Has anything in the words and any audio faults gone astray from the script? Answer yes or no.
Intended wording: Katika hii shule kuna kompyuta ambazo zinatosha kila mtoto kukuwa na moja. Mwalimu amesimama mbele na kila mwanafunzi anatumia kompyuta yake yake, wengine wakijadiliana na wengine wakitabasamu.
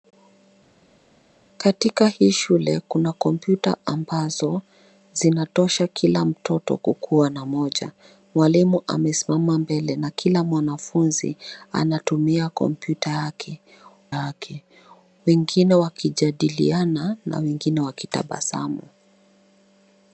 no